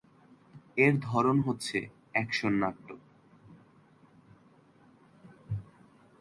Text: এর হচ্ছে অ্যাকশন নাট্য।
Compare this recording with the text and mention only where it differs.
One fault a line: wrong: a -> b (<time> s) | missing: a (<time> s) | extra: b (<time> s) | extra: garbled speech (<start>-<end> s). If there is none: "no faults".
extra: ধরন (1.0 s)